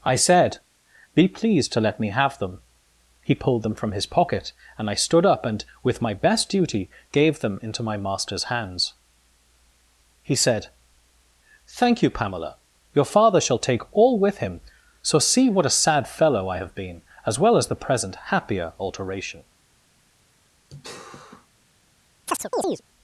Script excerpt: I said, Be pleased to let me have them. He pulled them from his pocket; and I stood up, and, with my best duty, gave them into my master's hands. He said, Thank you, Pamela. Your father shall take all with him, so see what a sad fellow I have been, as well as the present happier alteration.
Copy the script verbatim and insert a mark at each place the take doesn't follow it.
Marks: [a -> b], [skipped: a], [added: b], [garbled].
I said, Be pleased to let me have them. He pulled them from his pocket; and I stood up, and, with my best duty, gave them into my master's hands. He said, Thank you, Pamela. Your father shall take all with him, so see what a sad fellow I have been, as well as the present happier alteration.